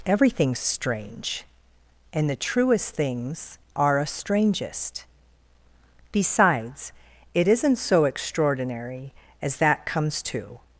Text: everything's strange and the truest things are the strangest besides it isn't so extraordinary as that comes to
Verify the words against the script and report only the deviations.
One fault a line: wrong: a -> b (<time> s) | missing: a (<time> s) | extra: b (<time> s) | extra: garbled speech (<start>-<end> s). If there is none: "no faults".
wrong: the -> a (4.0 s)